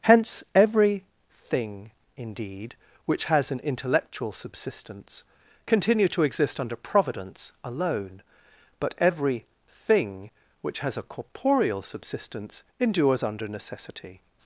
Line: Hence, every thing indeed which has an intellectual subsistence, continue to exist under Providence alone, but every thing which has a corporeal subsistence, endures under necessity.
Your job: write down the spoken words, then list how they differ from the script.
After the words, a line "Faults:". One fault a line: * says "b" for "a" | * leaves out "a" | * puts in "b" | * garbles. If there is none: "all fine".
Hence, every thing indeed which has an intellectual subsistence, continue to exist under Providence alone, but every thing which has a corporeal subsistence, endures under necessity.
Faults:
all fine